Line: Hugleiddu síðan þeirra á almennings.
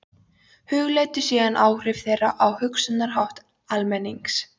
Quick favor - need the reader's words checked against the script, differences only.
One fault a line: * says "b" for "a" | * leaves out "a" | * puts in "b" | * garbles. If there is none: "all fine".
* puts in "áhrif"
* puts in "hugsunarhátt"